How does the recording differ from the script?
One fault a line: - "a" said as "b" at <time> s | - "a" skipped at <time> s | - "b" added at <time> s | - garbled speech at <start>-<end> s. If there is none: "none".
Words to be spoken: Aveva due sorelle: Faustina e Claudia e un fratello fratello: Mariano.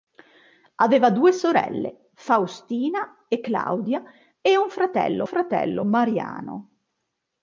none